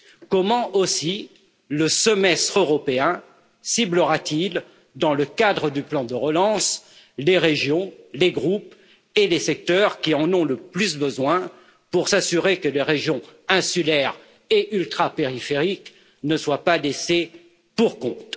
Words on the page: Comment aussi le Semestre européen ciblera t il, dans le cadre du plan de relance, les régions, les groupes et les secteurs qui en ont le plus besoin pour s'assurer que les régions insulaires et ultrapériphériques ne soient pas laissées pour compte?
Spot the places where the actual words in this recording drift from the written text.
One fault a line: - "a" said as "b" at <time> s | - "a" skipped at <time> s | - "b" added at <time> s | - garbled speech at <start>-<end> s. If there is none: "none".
none